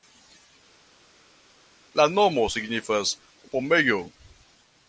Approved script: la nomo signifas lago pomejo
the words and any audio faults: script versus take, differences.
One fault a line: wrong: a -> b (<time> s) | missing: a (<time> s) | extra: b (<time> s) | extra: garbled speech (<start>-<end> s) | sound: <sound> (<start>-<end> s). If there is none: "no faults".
missing: lago (3.1 s)